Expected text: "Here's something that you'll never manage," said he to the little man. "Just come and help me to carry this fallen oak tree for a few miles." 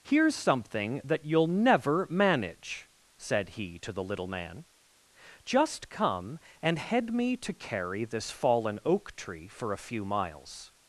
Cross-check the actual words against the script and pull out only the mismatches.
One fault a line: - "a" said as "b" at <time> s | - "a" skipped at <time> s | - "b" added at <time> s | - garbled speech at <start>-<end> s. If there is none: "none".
- "help" said as "head" at 6.8 s